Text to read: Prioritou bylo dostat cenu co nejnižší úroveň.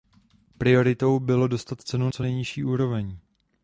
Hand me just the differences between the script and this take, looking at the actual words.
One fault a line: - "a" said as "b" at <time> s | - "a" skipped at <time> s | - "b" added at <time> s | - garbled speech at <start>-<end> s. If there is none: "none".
none